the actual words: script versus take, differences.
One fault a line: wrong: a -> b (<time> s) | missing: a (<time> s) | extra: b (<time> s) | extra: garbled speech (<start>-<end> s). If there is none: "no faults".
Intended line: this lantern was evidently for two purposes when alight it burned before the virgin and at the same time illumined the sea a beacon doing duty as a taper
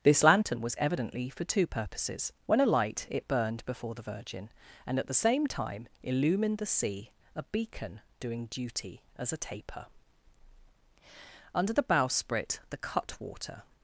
extra: under the bowsprit the cutwater (11.5 s)